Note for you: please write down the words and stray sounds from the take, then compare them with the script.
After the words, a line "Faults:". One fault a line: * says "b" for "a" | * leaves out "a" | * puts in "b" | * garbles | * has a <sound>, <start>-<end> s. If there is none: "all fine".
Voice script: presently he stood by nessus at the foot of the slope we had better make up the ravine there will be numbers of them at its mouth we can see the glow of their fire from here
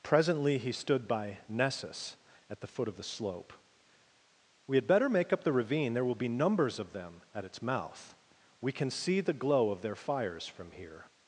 presently he stood by nessus at the foot of the slope we had better make up the ravine there will be numbers of them at its mouth we can see the glow of their fires from here
Faults:
* says "fires" for "fire"